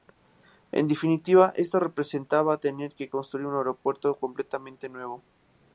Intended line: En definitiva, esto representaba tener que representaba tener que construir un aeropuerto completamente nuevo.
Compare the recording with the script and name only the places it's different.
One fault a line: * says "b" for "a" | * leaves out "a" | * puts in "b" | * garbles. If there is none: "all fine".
* leaves out "representaba tener que"